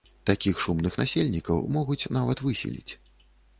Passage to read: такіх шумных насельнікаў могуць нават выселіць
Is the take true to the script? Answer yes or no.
yes